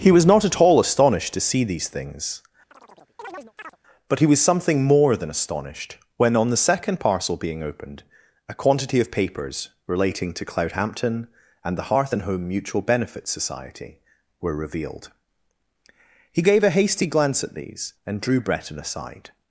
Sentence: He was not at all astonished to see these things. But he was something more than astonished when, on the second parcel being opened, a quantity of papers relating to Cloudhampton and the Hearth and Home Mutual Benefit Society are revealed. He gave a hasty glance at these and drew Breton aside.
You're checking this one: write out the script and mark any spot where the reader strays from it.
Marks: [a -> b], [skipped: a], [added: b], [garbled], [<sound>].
He was not at all astonished to see these things. [chirp] But he was something more than astonished when, on the second parcel being opened, a quantity of papers relating to Cloudhampton and the Hearth and Home Mutual Benefit Society [are -> were] revealed. He gave a hasty glance at these and drew Breton aside.